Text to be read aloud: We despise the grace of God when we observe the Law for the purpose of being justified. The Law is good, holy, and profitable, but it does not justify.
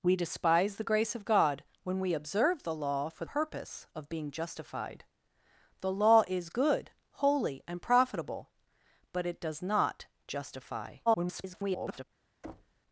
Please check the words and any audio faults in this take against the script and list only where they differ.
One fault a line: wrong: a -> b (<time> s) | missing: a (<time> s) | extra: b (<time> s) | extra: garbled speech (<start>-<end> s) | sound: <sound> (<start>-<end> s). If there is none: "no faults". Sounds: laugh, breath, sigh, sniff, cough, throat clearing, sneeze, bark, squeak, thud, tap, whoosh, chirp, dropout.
missing: the (3.2 s)
extra: garbled speech (11.1-12.0 s)
sound: thud (12.4-12.8 s)